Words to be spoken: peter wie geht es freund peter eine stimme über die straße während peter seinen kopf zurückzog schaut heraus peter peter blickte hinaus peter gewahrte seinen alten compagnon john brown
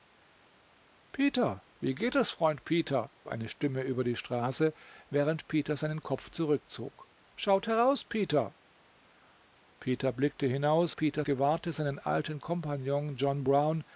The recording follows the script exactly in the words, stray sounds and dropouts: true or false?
true